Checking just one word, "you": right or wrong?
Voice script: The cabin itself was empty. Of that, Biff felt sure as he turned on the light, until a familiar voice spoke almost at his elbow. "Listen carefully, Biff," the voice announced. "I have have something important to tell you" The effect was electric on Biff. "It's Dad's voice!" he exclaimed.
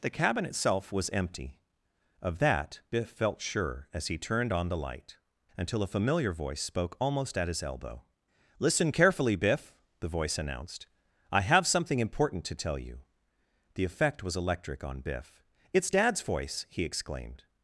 right